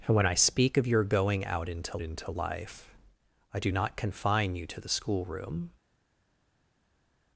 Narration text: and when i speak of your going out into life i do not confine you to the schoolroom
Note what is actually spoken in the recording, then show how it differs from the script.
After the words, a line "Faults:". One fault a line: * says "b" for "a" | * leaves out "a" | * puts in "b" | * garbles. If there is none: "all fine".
and when i speak of your going out into into life i do not confine you to the schoolroom
Faults:
* puts in "into"